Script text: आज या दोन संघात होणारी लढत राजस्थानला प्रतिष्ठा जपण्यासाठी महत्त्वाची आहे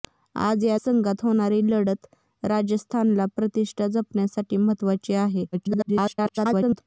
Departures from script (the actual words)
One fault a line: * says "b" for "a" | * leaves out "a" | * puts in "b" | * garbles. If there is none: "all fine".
* leaves out "दोन"
* garbles